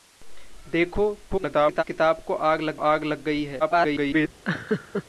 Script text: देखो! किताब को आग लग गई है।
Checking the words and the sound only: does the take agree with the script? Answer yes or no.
no